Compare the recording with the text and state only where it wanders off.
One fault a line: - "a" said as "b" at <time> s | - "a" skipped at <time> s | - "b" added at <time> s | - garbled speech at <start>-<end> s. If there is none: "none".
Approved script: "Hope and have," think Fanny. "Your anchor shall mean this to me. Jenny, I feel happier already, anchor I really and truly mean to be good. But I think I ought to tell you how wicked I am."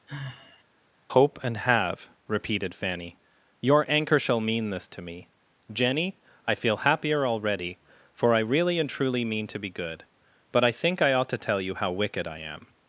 - "think" said as "repeated" at 2.3 s
- "anchor" said as "for" at 8.1 s